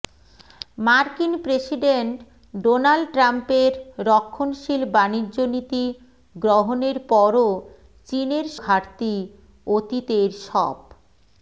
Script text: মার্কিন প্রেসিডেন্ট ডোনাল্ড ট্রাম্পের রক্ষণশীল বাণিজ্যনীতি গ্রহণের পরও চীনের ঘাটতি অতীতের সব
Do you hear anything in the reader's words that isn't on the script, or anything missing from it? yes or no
no